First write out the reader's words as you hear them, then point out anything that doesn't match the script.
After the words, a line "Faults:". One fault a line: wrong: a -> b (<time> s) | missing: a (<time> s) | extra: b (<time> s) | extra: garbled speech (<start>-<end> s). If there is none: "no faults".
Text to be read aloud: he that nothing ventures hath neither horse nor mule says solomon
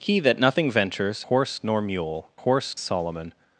he that nothing ventures horse nor mule horse solomon
Faults:
missing: hath neither (1.2 s)
wrong: says -> horse (2.3 s)